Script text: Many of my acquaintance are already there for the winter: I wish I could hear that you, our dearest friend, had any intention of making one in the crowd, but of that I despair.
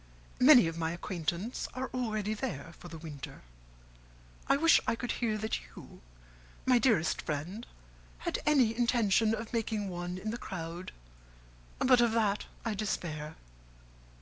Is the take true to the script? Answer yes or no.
no